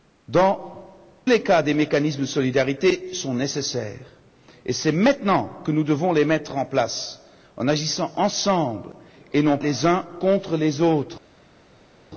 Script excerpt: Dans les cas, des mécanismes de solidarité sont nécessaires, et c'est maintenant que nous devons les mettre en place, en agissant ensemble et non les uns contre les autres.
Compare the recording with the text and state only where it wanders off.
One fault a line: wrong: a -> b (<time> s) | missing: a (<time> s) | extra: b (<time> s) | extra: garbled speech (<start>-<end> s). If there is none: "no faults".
no faults